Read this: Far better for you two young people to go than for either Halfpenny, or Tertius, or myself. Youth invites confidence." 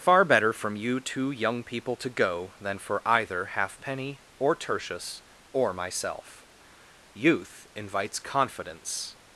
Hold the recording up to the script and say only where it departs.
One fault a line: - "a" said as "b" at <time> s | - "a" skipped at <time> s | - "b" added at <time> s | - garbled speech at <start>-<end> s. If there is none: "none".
- "for" said as "from" at 0.5 s